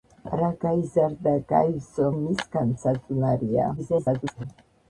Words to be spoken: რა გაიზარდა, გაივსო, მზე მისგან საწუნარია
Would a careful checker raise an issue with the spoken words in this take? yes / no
yes